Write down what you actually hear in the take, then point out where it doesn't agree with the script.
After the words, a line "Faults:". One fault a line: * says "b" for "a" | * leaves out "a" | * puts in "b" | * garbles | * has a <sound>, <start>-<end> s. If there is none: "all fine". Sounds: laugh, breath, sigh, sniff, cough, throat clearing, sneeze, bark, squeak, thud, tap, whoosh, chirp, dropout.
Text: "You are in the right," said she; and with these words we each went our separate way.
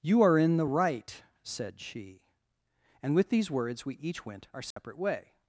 "You are in the right," said she; and with these words we each went our separate way.
Faults:
* has a dropout, 4.7-4.8 s